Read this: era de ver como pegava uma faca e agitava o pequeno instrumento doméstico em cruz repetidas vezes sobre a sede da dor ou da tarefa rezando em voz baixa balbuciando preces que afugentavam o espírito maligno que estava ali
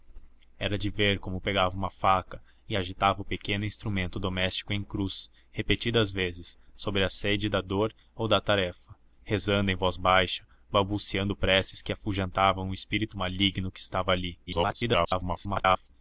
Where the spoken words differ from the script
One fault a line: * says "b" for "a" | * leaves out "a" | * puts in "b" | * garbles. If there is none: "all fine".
* garbles